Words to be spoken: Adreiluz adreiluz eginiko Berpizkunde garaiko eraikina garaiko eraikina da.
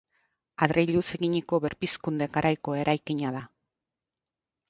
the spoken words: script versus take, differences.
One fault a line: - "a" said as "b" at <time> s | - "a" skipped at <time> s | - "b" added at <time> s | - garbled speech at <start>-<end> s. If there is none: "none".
- "adreiluz" skipped at 1.0 s
- "garaiko eraikina" skipped at 3.4 s